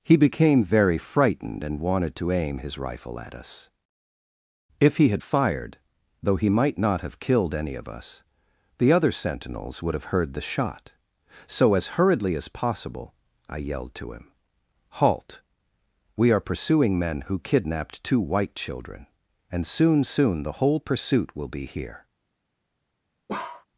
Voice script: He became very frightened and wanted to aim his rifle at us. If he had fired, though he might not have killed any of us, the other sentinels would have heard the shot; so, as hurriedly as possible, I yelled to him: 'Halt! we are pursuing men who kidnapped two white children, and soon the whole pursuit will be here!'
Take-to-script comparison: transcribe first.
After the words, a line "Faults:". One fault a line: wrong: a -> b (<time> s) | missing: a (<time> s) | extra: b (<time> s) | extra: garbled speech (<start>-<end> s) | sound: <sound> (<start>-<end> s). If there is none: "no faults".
He became very frightened and wanted to aim his rifle at us. If he had fired, though he might not have killed any of us, the other sentinels would have heard the shot; so, as hurriedly as possible, I yelled to him: 'Halt! we are pursuing men who kidnapped two white children, and soon soon the whole pursuit will be here!'
Faults:
extra: soon (20.1 s)
sound: bark (23.3-23.7 s)